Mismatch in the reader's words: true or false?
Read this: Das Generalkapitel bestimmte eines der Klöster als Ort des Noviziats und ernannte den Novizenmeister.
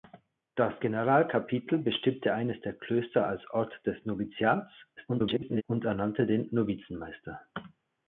true